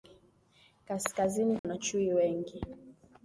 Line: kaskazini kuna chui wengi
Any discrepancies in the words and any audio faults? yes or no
yes